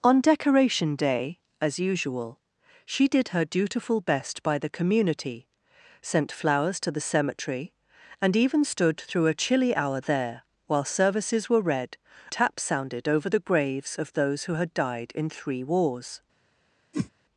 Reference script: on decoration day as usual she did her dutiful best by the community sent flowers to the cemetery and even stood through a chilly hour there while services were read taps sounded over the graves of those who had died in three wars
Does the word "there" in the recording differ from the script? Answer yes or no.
no